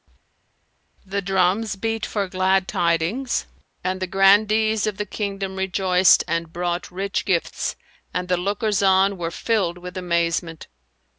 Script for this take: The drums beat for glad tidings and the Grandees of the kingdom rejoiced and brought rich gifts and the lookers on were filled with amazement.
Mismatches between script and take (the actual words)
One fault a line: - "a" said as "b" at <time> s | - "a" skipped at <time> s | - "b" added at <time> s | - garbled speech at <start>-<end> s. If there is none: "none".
none